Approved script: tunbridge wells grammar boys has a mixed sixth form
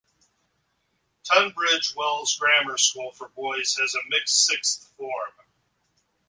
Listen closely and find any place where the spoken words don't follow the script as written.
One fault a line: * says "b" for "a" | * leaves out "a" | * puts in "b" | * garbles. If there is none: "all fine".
* puts in "school for"